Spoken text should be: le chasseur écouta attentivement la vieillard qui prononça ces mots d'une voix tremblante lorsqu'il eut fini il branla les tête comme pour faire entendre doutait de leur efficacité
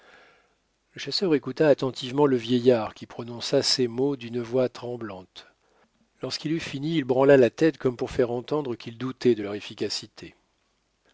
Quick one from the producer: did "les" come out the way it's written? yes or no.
no